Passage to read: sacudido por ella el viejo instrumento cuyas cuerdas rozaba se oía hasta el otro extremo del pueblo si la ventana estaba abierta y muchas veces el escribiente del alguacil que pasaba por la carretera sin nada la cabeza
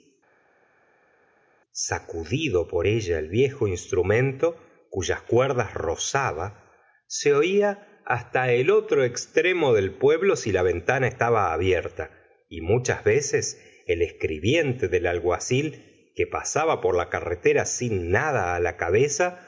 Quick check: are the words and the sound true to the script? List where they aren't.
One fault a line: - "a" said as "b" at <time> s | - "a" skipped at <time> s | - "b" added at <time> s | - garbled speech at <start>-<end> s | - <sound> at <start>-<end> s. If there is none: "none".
none